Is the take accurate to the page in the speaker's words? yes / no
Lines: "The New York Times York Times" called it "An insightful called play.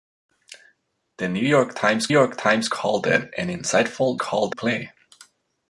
yes